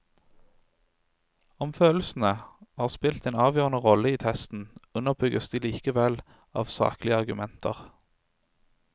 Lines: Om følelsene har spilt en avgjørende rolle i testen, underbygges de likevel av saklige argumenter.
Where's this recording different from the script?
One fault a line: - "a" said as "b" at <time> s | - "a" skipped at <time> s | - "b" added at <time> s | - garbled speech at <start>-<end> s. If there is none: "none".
none